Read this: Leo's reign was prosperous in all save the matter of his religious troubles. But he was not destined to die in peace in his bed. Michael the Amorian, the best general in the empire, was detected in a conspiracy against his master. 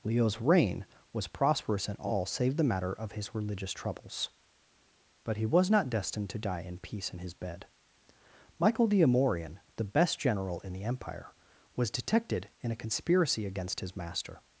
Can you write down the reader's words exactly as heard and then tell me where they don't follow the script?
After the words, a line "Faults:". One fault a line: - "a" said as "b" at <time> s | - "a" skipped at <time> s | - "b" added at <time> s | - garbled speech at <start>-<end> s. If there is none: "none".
Leo's reign was prosperous in all save the matter of his religious troubles. But he was not destined to die in peace in his bed. Michael the Amorian, the best general in the empire, was detected in a conspiracy against his master.
Faults:
none